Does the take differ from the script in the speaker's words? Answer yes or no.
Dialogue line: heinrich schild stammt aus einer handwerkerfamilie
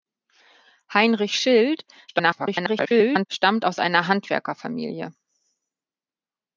yes